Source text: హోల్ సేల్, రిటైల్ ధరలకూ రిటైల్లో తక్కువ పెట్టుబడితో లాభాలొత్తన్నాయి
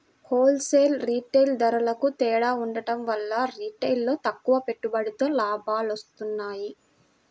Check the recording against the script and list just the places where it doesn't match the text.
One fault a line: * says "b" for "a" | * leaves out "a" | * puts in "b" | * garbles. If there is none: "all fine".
* puts in "తేడా ఉండటం వల్ల"